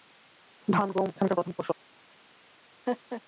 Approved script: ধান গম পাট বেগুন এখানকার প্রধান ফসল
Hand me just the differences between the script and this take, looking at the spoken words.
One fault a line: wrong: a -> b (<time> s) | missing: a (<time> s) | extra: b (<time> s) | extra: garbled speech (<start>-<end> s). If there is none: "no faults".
missing: পাট বেগুন (1.1 s)